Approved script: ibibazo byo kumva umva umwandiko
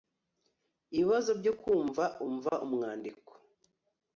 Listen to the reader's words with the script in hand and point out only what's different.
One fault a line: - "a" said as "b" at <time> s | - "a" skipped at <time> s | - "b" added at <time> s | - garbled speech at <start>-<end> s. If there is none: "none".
none